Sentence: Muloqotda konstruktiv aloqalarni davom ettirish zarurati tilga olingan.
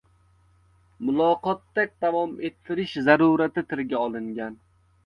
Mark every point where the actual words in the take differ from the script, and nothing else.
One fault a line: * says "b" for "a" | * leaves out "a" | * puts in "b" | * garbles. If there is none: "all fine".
* leaves out "konstruktiv aloqalarni"